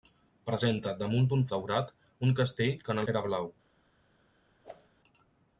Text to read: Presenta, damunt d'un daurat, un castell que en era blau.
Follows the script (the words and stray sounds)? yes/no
no